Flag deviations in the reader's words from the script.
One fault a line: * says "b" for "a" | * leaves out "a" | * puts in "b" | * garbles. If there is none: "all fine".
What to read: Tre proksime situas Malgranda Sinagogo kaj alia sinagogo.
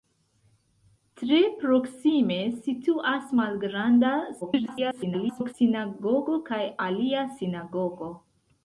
* garbles